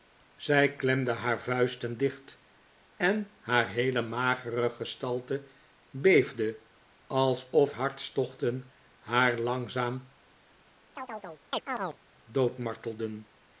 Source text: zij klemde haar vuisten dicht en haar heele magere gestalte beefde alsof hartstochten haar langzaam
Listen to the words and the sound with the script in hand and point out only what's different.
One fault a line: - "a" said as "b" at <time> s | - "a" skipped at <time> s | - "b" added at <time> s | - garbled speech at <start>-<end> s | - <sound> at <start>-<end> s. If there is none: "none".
- chirp at 11.0-12.0 s